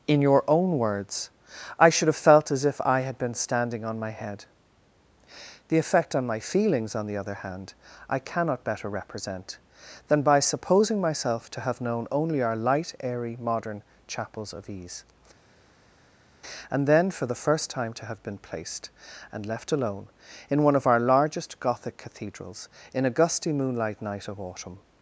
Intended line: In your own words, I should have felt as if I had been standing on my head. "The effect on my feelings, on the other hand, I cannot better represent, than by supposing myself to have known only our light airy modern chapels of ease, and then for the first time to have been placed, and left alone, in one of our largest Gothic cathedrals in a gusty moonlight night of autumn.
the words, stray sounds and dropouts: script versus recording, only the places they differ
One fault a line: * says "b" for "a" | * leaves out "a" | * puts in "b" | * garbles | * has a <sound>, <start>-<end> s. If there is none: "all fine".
all fine